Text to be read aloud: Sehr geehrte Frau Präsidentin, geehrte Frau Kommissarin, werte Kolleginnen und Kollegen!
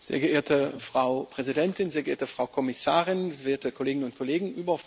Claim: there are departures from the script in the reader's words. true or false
true